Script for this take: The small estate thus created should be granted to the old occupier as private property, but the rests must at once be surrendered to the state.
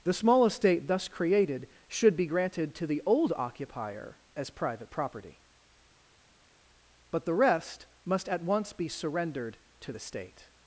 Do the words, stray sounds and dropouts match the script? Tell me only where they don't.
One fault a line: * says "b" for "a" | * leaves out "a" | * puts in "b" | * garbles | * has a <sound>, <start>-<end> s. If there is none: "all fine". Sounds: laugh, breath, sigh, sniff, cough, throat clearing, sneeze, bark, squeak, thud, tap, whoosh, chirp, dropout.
* says "rest" for "rests"